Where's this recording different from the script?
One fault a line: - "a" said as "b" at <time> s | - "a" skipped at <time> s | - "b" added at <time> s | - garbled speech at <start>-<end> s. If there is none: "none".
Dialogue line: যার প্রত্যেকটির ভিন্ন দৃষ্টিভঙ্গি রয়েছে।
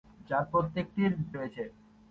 - "ভিন্ন দৃষ্টিভঙ্গি" skipped at 1.1 s